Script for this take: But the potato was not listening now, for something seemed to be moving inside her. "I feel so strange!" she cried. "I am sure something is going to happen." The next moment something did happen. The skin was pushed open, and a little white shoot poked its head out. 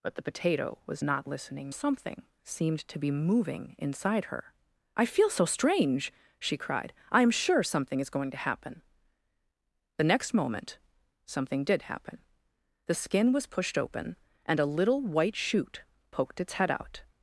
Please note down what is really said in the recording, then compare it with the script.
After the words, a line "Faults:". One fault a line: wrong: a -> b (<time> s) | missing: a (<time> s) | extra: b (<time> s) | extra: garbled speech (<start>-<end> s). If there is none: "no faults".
But the potato was not listening something seemed to be moving inside her. "I feel so strange!" she cried. "I am sure something is going to happen." The next moment something did happen. The skin was pushed open, and a little white shoot poked its head out.
Faults:
missing: now for (1.7 s)